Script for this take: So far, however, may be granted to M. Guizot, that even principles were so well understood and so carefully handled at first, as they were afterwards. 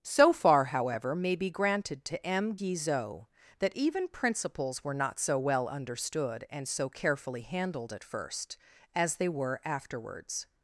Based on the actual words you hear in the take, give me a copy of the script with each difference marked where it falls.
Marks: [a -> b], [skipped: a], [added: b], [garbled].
So far, however, may be granted to M. Guizot, that even principles were [added: not] so well understood and so carefully handled at first, as they were afterwards.